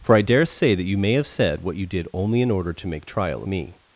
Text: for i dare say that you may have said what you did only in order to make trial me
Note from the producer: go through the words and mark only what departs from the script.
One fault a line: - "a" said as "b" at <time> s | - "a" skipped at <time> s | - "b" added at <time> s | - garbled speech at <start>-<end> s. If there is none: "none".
none